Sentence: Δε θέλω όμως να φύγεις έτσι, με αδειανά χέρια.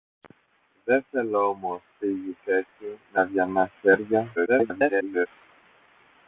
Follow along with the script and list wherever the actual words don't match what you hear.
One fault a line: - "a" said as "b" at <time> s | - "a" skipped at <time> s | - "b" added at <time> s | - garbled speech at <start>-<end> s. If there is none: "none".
- "να" skipped at 1.8 s
- garbled speech at 4.4-5.3 s